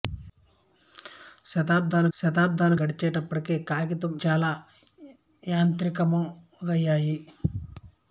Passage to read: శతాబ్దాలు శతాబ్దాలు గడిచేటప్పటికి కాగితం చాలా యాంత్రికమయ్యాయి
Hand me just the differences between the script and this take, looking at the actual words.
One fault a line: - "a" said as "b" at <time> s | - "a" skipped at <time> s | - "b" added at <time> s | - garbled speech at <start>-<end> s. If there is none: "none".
none